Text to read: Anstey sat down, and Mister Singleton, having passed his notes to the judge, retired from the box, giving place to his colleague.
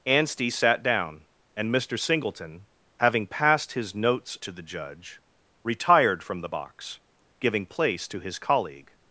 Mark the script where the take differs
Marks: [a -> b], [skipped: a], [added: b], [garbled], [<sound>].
Anstey sat down, and Mister Singleton, having passed his notes to the judge, retired from the box, giving place to his colleague.